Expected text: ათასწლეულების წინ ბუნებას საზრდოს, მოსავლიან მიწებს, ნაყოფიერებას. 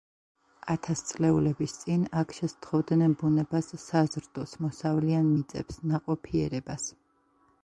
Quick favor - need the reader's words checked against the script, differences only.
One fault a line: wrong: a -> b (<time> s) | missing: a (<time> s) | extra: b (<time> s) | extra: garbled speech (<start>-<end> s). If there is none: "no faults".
extra: აქ შესთხოვდნენ (2.2 s)